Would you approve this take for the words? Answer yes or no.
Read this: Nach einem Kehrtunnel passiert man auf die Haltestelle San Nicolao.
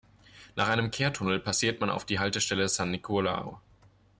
yes